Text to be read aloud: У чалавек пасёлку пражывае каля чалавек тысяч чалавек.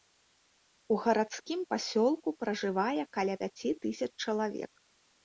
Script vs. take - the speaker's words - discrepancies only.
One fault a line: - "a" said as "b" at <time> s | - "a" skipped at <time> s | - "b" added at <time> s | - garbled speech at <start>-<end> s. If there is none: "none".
- "чалавек" said as "гарадскім" at 1.0 s
- "чалавек" said as "пяці" at 3.4 s